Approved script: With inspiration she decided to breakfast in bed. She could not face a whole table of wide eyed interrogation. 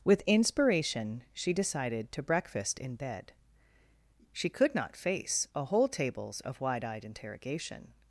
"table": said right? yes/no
no